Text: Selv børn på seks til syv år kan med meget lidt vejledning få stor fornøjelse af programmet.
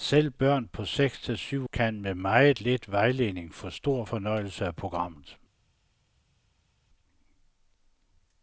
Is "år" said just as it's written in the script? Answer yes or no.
no